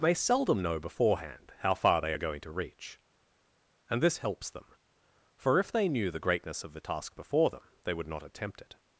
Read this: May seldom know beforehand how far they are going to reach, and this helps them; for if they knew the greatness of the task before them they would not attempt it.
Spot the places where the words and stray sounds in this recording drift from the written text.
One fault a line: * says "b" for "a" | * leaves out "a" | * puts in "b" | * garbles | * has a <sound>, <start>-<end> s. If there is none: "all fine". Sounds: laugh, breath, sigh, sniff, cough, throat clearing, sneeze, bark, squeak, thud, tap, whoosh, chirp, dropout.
all fine